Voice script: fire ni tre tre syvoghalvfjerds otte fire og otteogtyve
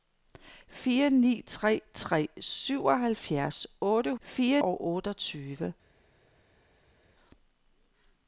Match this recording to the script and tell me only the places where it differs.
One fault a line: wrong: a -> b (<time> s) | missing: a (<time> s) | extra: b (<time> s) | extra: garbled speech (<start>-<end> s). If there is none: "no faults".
no faults